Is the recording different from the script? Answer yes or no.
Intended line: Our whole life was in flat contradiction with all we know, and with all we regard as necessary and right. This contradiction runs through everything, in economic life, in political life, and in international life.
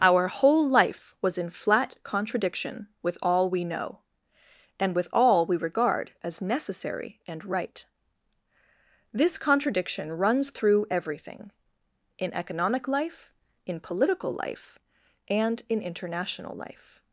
no